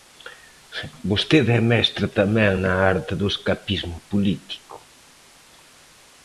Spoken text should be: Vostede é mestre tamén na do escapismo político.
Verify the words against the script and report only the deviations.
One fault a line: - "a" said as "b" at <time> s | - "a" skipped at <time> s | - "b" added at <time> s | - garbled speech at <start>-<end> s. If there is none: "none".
- "arte" added at 2.9 s